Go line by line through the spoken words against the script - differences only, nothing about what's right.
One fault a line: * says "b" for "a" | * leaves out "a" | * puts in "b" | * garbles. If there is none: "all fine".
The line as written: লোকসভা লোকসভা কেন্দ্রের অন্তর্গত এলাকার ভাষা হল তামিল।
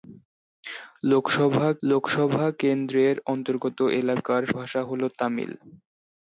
all fine